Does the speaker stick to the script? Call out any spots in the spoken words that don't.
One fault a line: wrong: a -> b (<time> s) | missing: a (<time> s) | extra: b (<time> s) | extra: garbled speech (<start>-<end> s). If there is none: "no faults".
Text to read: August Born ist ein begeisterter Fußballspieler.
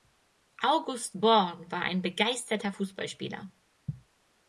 wrong: ist -> war (1.7 s)